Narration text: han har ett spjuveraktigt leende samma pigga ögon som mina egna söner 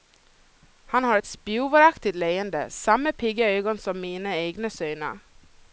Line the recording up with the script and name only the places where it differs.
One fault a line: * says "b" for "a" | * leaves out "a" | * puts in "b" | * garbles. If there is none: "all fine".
all fine